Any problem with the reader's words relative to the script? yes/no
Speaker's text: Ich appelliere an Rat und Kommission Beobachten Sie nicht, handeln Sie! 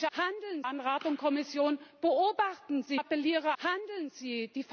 yes